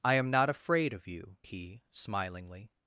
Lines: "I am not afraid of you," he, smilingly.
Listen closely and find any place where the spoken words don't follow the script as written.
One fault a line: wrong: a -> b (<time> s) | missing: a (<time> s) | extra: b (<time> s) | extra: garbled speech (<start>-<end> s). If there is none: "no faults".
no faults